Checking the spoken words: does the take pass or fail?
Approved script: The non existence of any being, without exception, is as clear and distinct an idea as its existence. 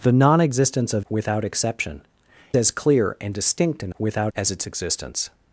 fail